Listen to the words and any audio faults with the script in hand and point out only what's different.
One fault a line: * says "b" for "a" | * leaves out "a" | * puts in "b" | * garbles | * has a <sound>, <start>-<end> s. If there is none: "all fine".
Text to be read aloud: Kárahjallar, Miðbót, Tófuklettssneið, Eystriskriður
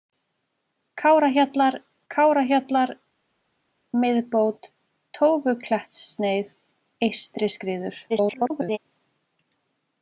* puts in "kárahjallar"
* garbles